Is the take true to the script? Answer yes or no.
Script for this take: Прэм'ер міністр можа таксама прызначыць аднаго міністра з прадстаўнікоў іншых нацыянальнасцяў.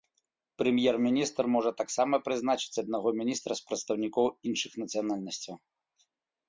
yes